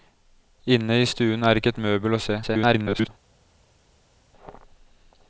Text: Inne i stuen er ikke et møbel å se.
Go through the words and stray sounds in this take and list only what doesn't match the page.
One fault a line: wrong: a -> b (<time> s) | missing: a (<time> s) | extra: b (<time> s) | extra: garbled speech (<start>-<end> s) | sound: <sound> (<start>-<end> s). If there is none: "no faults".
extra: garbled speech (2.4-3.1 s)